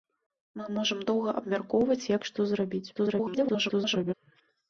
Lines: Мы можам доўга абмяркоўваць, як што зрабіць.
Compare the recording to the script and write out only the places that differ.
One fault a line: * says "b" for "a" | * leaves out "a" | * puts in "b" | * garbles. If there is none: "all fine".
* garbles